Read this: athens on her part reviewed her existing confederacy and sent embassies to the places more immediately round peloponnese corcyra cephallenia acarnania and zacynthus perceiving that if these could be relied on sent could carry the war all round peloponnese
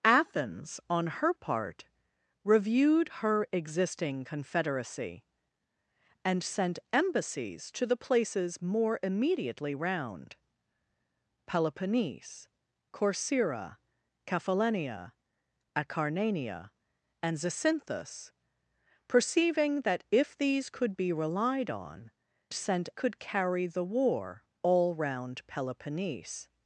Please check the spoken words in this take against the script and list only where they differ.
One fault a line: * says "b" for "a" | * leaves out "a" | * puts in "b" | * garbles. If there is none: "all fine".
all fine